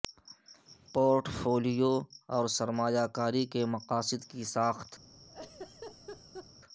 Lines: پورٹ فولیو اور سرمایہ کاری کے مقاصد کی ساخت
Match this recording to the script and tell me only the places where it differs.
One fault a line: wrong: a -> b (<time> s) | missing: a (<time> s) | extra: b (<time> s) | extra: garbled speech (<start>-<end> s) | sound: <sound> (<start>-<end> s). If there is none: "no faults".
sound: laugh (5.2-6.5 s)